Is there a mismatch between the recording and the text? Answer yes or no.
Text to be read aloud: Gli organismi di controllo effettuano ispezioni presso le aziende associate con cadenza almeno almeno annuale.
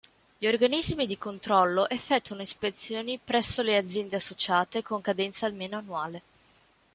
yes